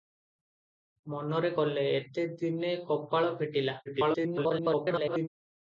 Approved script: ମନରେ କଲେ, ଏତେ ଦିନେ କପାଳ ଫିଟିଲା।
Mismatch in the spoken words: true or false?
true